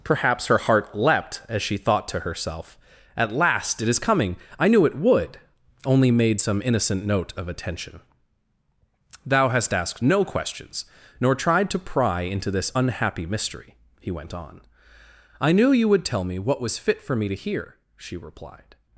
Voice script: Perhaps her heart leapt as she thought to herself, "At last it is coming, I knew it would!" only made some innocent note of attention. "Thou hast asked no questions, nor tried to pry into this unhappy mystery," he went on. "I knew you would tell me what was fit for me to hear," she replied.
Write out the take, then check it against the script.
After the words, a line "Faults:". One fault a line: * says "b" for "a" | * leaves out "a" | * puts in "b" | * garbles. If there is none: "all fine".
Perhaps her heart leapt as she thought to herself, "At last it is coming, I knew it would!" only made some innocent note of attention. "Thou hast asked no questions, nor tried to pry into this unhappy mystery," he went on. "I knew you would tell me what was fit for me to hear," she replied.
Faults:
all fine